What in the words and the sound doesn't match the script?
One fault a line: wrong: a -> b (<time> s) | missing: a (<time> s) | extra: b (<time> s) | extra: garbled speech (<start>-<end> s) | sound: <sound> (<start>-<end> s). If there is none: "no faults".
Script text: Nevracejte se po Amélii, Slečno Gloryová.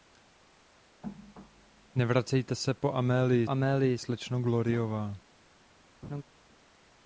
extra: Amélii (3.5 s)
sound: laugh (6.0-6.2 s)